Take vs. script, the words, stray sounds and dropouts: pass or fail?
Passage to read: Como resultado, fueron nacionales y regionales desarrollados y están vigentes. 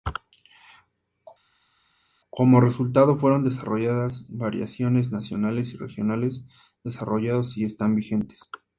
fail